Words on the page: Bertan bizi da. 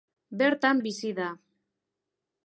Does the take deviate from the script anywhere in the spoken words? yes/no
no